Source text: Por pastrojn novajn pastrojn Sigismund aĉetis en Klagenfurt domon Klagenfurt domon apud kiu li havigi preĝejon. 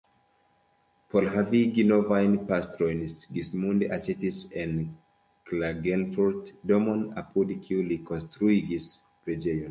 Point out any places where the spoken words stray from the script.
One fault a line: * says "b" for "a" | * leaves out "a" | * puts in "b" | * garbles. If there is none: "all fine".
* says "havigi" for "pastrojn"
* leaves out "Klagenfurt domon"
* says "konstruigis" for "havigi"